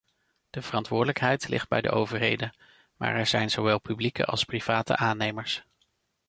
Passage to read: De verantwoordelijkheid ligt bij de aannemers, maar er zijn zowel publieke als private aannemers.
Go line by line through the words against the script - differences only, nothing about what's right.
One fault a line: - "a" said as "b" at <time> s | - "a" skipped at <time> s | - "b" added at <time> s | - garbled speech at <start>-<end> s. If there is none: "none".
- "aannemers" said as "overheden" at 1.9 s